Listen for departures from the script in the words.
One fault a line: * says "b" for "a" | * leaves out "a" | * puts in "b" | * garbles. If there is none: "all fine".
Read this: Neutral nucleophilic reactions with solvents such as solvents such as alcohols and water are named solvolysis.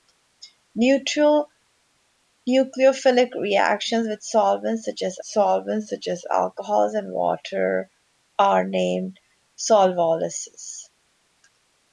all fine